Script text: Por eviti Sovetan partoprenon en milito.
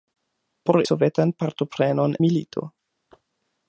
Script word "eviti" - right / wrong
wrong